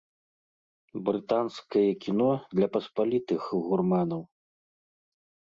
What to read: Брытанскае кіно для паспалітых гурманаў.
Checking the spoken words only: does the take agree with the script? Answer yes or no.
yes